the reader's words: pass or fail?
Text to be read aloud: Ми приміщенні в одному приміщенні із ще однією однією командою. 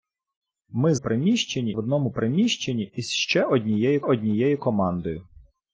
pass